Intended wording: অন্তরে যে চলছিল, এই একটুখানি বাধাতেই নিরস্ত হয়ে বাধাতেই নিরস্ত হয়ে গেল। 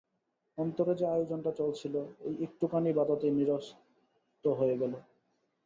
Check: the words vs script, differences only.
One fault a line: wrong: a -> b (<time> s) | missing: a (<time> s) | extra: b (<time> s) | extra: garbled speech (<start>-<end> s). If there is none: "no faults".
extra: আয়োজনটা (1.1 s)
missing: বাধাতেই নিরস্ত হয়ে (4.8 s)